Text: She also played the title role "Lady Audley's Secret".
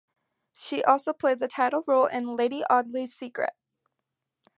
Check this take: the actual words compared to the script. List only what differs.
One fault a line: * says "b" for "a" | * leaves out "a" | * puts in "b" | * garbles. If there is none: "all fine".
* puts in "in"